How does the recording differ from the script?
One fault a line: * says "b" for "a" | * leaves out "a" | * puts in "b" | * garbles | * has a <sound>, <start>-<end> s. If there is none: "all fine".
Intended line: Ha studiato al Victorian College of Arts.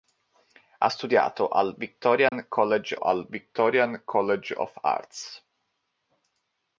* has a dropout, 2.3-2.3 s
* puts in "al Victorian College"